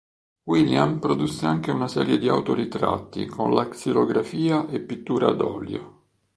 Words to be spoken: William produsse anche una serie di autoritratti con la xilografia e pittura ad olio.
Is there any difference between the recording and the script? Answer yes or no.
no